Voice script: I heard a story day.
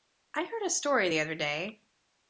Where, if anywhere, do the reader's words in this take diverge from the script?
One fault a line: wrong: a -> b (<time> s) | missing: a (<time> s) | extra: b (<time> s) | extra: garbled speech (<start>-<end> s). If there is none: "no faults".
extra: the other (1.1 s)